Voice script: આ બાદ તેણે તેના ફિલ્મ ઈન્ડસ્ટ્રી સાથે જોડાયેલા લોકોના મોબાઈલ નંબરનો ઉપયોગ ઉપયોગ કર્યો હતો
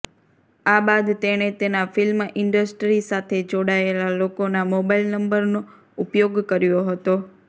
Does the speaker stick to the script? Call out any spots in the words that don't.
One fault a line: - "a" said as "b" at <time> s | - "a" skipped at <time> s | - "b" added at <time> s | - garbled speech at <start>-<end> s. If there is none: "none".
- "ઉપયોગ" skipped at 6.4 s